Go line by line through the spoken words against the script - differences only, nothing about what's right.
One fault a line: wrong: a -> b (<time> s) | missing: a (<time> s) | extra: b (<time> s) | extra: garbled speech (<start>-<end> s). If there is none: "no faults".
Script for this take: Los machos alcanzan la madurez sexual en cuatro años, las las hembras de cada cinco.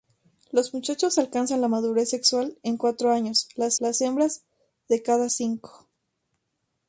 no faults